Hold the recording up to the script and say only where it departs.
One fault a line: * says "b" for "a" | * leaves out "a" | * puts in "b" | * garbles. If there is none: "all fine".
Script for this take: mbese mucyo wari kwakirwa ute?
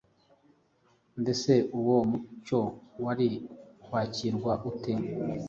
* puts in "uwo"